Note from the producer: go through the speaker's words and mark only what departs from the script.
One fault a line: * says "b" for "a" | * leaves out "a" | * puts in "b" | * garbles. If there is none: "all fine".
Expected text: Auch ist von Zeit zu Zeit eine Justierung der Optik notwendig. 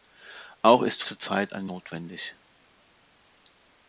* leaves out "von Zeit"
* leaves out "Justierung der Optik"